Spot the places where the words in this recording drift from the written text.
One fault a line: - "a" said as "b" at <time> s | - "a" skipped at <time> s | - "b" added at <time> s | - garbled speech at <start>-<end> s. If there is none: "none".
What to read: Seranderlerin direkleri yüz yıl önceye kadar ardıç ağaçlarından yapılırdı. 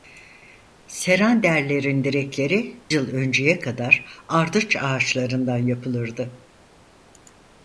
- "yüz" skipped at 2.8 s